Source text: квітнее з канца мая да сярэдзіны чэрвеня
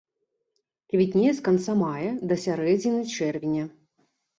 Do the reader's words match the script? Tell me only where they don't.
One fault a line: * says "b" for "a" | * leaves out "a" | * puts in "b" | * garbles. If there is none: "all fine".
all fine